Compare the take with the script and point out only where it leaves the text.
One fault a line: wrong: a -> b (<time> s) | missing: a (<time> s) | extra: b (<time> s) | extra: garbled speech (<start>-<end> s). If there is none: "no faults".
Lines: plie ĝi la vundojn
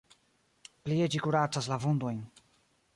extra: kuracas (1.3 s)